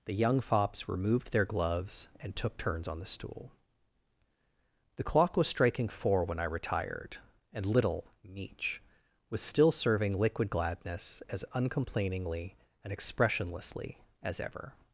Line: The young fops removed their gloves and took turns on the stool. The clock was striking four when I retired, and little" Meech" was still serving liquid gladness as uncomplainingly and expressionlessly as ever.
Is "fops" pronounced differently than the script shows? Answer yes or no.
no